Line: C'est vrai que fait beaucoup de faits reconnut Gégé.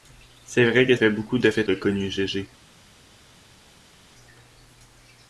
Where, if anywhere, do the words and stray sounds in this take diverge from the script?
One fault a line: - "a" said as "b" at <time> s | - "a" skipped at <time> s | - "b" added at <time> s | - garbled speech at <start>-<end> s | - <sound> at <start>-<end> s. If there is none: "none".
none